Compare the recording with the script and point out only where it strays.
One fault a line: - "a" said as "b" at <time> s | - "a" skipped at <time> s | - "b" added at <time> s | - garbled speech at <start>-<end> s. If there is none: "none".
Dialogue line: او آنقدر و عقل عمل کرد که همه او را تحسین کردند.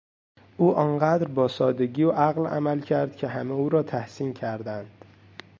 - "با سادگی" added at 1.3 s